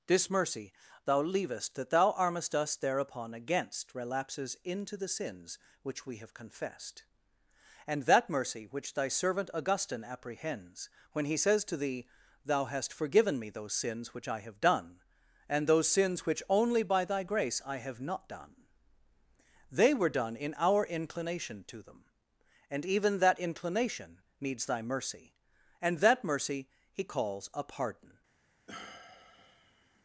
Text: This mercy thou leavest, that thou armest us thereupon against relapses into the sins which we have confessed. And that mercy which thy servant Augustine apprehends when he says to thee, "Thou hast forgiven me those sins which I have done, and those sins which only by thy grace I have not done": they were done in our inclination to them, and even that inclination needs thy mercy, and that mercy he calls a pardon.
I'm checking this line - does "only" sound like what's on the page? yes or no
yes